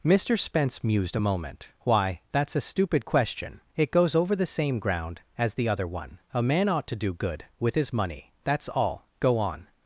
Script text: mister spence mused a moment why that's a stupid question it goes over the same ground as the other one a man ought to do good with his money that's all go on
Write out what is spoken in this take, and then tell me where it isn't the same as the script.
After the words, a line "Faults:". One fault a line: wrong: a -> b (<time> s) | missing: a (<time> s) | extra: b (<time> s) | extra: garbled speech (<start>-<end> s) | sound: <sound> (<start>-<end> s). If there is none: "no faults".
mister spence mused a moment why that's a stupid question it goes over the same ground as the other one a man ought to do good with his money that's all go on
Faults:
no faults